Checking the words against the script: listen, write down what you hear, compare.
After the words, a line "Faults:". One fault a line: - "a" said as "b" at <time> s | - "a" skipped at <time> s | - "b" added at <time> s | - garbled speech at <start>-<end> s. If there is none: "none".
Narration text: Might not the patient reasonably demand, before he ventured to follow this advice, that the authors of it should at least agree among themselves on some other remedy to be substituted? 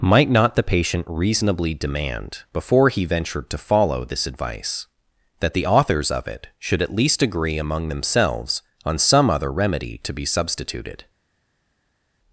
Might not the patient reasonably demand, before he ventured to follow this advice, that the authors of it should at least agree among themselves on some other remedy to be substituted?
Faults:
none